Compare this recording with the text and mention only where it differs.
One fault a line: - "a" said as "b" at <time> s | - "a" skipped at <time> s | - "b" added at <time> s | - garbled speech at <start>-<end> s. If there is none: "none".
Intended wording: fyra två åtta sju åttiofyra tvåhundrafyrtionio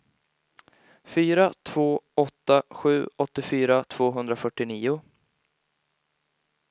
none